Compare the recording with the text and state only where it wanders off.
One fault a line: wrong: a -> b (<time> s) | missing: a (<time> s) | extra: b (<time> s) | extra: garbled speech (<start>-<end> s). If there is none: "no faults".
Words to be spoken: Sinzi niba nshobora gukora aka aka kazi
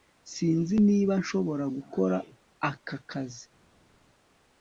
missing: aka (3.0 s)